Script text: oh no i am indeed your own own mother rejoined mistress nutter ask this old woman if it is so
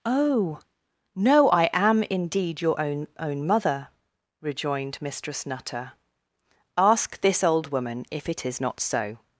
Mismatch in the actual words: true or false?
true